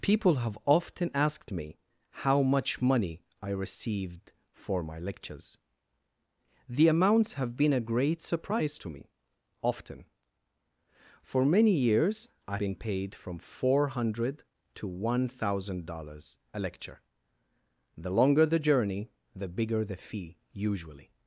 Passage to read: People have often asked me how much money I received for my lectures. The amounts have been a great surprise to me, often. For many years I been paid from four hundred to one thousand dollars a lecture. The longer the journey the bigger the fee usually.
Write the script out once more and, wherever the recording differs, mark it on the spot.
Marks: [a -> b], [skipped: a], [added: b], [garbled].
People have often asked me how much money I received for my lectures. The amounts have been a great surprise to me, often. For many years I been paid from four hundred to one thousand dollars a lecture. The longer the journey the bigger the fee usually.